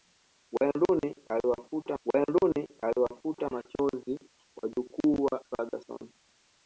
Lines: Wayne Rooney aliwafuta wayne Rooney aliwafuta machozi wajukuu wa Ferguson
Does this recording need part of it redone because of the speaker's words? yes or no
no